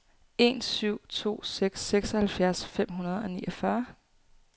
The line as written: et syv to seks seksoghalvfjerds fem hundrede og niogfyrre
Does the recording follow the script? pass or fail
fail